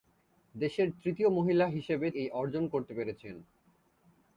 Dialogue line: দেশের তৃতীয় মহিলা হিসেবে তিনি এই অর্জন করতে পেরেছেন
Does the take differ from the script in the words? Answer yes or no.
yes